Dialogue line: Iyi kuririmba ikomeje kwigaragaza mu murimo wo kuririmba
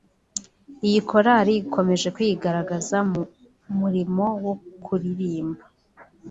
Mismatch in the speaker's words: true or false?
true